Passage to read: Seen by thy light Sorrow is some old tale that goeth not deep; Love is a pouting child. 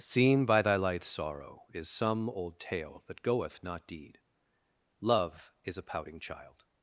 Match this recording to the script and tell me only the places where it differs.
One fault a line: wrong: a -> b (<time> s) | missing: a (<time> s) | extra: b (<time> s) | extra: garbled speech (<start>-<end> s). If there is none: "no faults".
wrong: deep -> deed (3.8 s)